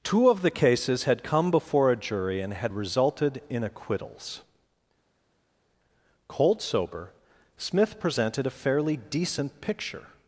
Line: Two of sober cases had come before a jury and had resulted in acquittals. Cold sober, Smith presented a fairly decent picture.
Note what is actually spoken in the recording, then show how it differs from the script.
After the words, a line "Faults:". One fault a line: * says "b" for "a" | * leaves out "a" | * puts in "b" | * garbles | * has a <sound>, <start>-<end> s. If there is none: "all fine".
Two of the cases had come before a jury and had resulted in acquittals. Cold sober, Smith presented a fairly decent picture.
Faults:
* says "the" for "sober"